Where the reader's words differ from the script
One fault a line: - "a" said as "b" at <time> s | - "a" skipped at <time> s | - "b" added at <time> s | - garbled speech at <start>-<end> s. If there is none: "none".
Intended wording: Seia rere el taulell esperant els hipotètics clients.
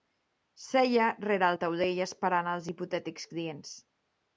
none